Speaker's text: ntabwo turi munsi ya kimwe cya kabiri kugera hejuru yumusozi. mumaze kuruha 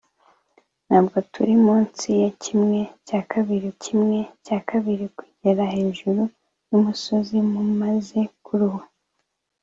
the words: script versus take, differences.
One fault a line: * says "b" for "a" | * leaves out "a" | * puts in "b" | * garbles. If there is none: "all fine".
* puts in "kimwe cya kabiri"